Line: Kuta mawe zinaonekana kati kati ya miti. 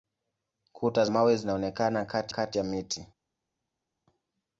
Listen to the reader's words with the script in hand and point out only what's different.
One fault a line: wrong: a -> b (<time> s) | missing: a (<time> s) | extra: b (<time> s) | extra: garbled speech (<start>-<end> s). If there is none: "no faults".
no faults